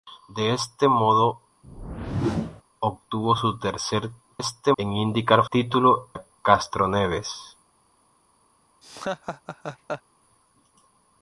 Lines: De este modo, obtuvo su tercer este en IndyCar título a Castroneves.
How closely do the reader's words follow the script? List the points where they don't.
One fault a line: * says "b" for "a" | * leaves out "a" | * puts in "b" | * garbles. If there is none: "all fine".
all fine